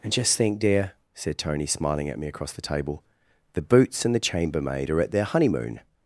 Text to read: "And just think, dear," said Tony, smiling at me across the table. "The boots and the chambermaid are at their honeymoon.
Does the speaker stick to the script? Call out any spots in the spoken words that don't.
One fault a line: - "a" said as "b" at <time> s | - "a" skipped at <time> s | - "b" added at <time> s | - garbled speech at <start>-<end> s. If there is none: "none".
none